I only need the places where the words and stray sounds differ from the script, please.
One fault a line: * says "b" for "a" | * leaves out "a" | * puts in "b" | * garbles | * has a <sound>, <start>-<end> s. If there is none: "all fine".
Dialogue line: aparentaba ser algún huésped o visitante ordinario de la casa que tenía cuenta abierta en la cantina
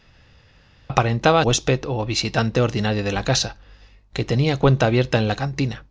* leaves out "ser algún"